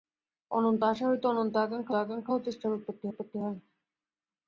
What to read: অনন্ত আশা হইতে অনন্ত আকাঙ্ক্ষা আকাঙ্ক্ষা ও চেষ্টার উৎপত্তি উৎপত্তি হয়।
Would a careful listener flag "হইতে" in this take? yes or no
no